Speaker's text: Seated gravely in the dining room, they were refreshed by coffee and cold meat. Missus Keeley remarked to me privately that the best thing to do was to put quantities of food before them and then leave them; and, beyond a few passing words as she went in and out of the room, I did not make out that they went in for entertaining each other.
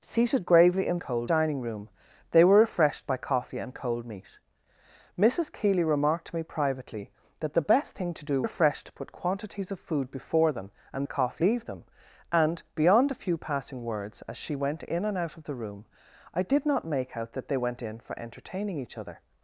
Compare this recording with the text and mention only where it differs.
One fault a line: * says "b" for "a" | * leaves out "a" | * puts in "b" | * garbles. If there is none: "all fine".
* says "cold" for "the"
* says "refreshed" for "was"
* says "coffee" for "then"